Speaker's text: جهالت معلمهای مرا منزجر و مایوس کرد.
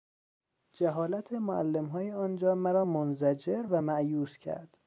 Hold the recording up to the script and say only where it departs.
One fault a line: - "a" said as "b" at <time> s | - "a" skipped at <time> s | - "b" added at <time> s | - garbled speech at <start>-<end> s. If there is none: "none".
- "آنجا" added at 2.1 s